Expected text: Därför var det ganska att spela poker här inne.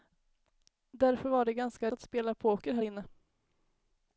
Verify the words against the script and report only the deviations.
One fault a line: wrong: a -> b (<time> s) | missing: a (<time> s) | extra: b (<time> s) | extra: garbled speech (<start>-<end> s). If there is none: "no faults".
no faults